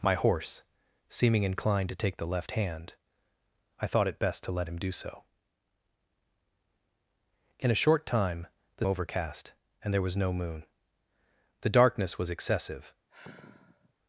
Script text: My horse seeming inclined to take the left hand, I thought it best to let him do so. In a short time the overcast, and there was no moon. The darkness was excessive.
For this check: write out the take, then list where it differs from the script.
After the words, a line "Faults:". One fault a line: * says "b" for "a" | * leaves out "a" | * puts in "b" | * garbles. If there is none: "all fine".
My horse seeming inclined to take the left hand, I thought it best to let him do so. In a short time the overcast, and there was no moon. The darkness was excessive.
Faults:
all fine